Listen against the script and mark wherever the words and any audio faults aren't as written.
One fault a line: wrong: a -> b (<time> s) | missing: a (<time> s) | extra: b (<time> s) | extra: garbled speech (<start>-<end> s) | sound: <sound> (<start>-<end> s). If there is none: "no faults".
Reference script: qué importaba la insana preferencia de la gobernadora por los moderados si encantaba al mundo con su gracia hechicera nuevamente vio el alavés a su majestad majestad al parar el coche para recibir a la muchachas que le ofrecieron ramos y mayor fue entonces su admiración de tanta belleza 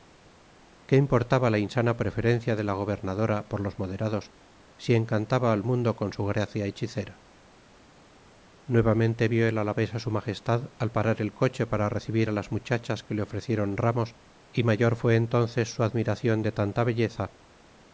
missing: majestad (10.7 s)
wrong: la -> las (12.3 s)